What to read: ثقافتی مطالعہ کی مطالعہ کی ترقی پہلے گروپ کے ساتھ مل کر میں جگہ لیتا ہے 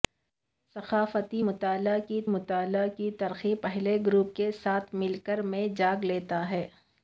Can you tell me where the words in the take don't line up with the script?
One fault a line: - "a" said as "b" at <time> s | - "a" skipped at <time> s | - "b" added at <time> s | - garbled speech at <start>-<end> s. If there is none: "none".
none